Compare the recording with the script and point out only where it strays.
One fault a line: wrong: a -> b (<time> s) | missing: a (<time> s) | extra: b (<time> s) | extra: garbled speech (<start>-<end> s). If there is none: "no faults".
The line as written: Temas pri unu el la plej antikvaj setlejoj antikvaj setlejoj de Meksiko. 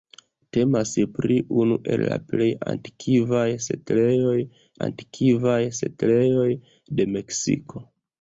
no faults